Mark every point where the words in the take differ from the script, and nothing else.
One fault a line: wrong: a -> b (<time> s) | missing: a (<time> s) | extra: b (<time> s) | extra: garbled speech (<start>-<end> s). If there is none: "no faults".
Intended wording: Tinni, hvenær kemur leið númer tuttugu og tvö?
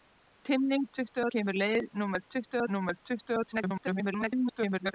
wrong: hvenær -> tuttugu (0.9 s)
extra: númer tuttugu (2.7 s)
extra: garbled speech (3.5-4.9 s)